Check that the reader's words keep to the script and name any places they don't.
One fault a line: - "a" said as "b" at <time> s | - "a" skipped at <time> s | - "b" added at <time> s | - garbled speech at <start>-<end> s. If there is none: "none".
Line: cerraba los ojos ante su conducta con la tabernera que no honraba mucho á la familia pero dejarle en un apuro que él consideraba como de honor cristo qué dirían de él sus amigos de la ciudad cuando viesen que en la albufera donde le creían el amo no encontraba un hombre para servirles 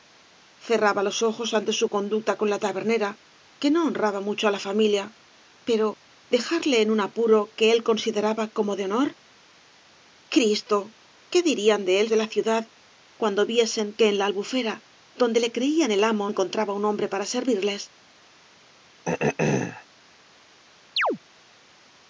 - "sus amigos" skipped at 12.1 s
- "no" skipped at 16.3 s